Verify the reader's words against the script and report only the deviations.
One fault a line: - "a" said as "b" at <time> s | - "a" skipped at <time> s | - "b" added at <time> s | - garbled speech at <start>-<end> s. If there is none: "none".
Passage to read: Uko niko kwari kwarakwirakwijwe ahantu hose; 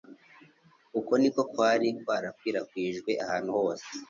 none